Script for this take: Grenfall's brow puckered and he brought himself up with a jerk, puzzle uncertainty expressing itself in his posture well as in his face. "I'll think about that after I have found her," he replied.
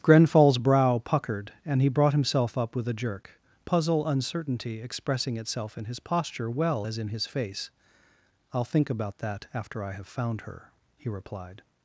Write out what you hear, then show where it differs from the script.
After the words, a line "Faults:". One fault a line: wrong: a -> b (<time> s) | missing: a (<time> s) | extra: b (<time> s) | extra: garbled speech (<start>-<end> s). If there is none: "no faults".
Grenfall's brow puckered and he brought himself up with a jerk, puzzle uncertainty expressing itself in his posture well as in his face. "I'll think about that after I have found her," he replied.
Faults:
no faults